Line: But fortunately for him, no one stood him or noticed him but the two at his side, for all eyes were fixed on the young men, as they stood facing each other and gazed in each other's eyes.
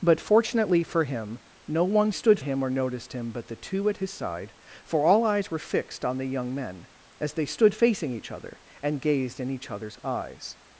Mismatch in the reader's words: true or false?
false